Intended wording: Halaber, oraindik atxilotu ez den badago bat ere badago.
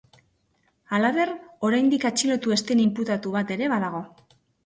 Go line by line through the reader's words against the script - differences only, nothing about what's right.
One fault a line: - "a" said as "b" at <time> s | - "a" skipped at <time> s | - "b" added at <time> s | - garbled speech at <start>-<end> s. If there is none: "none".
- "badago" said as "inputatu" at 2.9 s